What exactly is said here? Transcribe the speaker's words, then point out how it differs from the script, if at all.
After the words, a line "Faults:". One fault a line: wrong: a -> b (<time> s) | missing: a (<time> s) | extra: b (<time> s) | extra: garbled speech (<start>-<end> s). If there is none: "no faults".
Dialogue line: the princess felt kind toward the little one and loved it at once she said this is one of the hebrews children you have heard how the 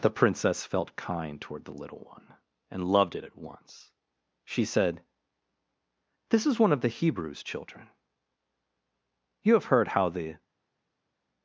the princess felt kind toward the little one and loved it at once she said this is one of the hebrews children you have heard how the
Faults:
no faults